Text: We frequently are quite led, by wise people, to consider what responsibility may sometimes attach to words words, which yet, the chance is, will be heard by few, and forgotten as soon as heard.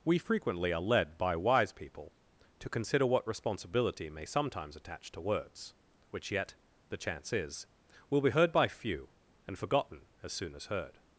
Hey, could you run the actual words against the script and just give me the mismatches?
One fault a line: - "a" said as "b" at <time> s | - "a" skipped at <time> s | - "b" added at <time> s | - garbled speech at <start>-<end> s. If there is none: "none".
- "quite" skipped at 0.8 s
- "words" skipped at 5.8 s